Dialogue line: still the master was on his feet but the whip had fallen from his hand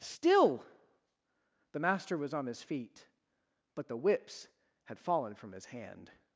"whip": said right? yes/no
no